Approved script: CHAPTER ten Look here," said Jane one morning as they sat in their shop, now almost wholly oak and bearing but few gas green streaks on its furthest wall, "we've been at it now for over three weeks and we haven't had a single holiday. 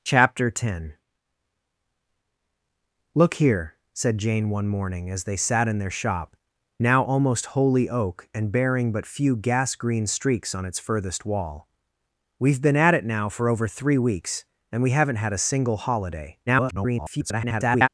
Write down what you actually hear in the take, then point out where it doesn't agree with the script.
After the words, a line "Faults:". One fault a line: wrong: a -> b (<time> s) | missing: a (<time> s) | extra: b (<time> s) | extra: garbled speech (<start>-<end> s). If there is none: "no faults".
CHAPTER ten Look here," said Jane one morning as they sat in their shop, now almost wholly oak and bearing but few gas green streaks on its furthest wall, "we've been at it now for over three weeks and we haven't had a single holiday. [garbled]
Faults:
extra: garbled speech (16.5-17.9 s)